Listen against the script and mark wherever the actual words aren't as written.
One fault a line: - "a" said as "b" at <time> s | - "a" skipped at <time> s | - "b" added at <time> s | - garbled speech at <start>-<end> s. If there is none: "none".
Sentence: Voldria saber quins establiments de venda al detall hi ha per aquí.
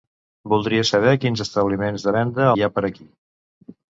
- "al detall" skipped at 2.5 s